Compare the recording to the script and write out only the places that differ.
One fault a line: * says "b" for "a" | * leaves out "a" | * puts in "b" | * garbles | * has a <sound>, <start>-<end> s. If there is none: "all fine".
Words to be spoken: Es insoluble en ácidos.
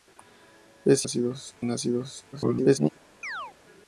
* says "ácidos" for "insoluble"
* garbles
* has a chirp, 3.2-3.5 s